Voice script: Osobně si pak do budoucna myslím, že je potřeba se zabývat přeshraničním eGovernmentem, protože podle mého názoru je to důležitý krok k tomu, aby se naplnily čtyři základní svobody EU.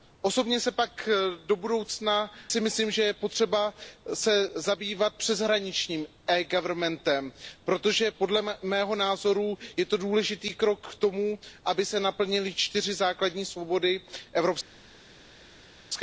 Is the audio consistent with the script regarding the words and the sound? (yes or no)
yes